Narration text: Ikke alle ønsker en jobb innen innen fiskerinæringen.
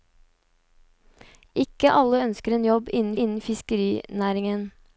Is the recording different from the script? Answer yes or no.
no